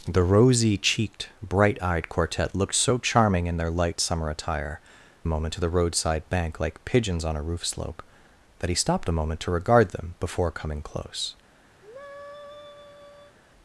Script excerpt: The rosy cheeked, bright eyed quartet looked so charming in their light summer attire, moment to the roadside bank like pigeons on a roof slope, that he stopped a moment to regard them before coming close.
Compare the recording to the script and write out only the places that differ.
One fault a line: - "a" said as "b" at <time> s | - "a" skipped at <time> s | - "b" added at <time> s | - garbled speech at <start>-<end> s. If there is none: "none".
none